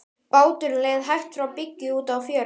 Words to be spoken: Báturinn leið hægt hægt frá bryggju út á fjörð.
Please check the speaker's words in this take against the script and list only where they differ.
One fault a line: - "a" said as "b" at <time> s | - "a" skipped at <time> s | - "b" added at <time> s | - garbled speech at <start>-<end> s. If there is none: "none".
- "hægt" skipped at 1.4 s